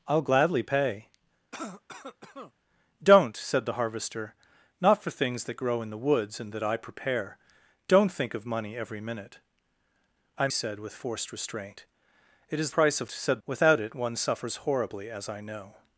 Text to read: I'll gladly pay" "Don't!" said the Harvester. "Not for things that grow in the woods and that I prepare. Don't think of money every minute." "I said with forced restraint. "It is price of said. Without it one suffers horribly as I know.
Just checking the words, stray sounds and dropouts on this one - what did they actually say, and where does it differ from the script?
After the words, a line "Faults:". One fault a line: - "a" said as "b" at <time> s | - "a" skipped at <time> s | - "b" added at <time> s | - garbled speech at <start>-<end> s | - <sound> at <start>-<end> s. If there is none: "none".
I'll gladly pay" "Don't!" said the Harvester. "Not for things that grow in the woods and that I prepare. Don't think of money every minute." "I said with forced restraint. "It is price of said. Without it one suffers horribly as I know.
Faults:
- cough at 1.5-2.5 s